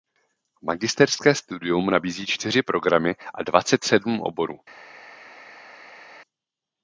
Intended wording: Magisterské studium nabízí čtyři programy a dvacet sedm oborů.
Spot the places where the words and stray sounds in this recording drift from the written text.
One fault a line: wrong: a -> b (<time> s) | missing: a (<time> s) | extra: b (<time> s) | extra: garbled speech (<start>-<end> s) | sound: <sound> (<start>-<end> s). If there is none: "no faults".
no faults